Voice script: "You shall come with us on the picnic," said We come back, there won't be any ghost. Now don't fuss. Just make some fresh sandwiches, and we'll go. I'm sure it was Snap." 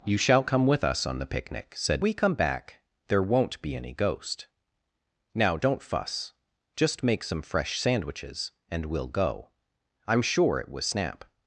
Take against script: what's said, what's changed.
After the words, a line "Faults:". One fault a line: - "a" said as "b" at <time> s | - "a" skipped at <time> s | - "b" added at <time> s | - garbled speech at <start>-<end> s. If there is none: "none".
"You shall come with us on the picnic," said We come back, there won't be any ghost. Now don't fuss. Just make some fresh sandwiches, and we'll go. I'm sure it was Snap."
Faults:
none